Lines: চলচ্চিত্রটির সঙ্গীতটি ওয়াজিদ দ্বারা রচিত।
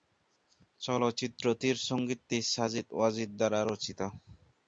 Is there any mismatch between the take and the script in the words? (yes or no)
yes